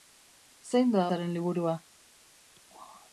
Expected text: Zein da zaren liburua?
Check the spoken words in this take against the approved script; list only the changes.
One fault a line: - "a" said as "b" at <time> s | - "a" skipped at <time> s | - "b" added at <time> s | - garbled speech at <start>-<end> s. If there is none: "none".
none